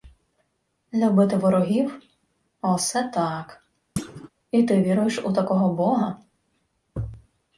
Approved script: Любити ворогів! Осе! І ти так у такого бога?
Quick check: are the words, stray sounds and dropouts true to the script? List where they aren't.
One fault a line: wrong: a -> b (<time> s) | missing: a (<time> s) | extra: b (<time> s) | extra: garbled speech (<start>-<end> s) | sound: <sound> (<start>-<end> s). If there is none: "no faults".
extra: так (3.0 s)
sound: thud (4.0-4.3 s)
wrong: так -> віруєш (4.8 s)